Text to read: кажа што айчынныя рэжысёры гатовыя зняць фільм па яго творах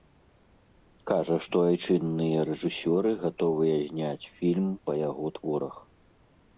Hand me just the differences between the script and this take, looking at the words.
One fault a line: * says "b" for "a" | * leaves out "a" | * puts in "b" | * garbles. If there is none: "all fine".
all fine